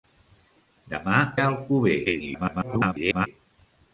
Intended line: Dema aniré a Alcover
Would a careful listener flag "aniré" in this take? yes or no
yes